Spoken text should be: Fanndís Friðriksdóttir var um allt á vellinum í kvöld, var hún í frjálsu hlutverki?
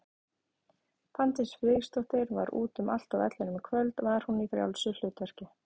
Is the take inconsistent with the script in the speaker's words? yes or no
yes